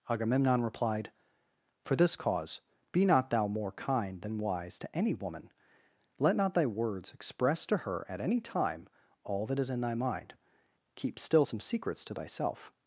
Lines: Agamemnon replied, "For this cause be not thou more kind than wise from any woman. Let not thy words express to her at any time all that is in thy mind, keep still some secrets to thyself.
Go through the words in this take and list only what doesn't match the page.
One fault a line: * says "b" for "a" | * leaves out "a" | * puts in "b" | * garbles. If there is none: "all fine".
* says "to" for "from"